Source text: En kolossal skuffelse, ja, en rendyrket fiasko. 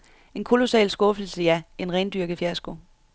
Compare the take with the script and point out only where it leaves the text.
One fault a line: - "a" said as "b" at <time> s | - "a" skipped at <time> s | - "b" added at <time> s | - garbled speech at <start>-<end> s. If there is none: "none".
none